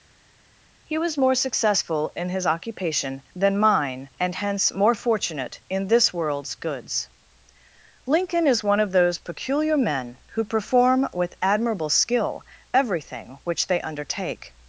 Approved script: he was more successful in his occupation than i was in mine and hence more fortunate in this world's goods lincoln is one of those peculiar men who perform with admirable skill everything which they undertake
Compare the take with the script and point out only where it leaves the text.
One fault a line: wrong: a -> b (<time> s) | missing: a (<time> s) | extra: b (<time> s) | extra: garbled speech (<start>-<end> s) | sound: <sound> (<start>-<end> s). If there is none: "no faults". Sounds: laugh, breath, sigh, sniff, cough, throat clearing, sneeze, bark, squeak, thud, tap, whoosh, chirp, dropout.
missing: i was in (3.6 s)